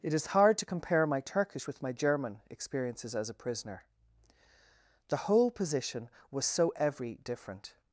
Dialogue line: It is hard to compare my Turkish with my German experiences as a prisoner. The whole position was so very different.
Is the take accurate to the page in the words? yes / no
no